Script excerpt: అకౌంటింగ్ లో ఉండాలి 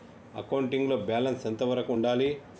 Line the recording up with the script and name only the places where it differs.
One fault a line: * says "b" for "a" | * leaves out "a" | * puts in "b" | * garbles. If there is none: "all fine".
* puts in "బ్యాలెన్స్ ఎంత వరకు"